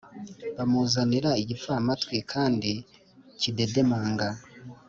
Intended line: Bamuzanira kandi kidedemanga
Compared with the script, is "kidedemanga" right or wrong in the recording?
right